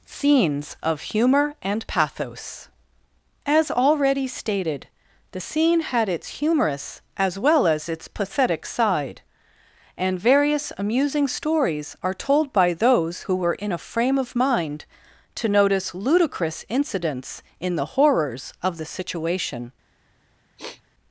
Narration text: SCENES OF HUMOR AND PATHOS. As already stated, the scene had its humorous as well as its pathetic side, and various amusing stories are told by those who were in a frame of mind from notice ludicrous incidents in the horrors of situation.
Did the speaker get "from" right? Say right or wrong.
wrong